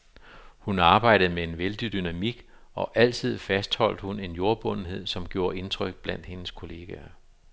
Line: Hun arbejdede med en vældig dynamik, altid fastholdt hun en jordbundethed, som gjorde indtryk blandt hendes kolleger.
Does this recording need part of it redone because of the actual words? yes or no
yes